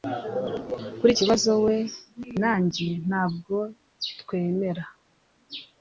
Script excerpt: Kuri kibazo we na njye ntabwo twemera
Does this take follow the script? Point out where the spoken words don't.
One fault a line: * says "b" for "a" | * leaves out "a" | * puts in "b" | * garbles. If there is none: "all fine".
all fine